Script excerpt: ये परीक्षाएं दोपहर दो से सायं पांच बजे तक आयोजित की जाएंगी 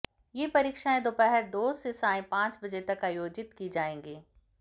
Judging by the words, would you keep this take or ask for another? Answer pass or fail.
pass